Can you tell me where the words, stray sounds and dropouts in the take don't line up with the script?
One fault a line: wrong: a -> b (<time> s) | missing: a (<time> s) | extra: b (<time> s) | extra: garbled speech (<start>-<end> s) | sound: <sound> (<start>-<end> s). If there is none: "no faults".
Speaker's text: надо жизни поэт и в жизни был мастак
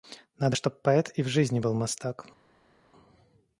wrong: жизни -> чтоб (0.5 s)